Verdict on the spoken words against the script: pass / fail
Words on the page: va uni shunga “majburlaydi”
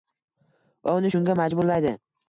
pass